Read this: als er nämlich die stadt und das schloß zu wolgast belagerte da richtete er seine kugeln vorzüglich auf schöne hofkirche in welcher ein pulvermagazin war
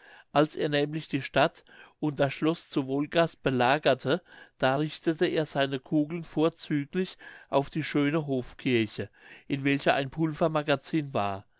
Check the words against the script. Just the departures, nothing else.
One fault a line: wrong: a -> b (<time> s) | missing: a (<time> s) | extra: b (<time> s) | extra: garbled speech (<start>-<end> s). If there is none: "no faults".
extra: die (7.7 s)